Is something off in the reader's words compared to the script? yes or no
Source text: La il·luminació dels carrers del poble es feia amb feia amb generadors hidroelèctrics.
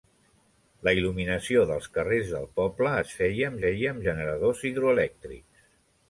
no